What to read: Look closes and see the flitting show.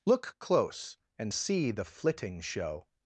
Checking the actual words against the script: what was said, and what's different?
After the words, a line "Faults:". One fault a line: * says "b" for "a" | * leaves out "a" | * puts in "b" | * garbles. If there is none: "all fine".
Look close and see the flitting show.
Faults:
* says "close" for "closes"